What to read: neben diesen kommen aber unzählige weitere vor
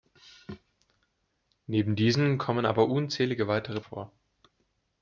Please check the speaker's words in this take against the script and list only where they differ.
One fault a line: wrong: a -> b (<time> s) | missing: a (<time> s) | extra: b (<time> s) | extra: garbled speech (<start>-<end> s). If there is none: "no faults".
no faults